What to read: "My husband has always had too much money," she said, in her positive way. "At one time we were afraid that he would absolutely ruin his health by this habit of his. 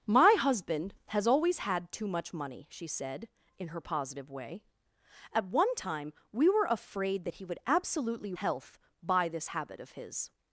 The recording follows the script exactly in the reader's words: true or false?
false